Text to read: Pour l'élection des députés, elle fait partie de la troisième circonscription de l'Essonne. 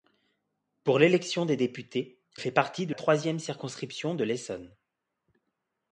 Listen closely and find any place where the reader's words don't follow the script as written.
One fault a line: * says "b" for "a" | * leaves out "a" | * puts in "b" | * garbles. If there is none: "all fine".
* leaves out "elle"
* leaves out "la"